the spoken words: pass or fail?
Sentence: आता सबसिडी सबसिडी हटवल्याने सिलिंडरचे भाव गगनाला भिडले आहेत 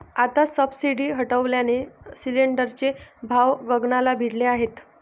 fail